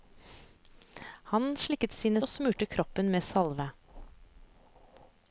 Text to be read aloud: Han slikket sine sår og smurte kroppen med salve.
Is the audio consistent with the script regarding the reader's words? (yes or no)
no